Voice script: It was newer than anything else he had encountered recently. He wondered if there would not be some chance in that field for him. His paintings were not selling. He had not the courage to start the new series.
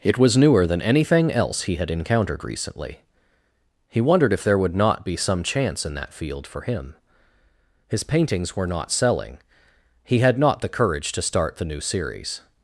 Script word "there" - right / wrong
right